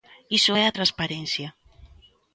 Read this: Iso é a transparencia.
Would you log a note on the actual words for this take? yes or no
no